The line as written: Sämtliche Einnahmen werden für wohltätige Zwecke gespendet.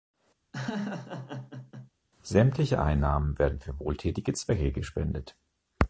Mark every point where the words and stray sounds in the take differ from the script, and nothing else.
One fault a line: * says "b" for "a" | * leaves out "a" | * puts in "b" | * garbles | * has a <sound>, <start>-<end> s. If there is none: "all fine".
* has a laugh, 0.5-1.9 s